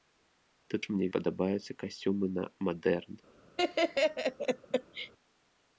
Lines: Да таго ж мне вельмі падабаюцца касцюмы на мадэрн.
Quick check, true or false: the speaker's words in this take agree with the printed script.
false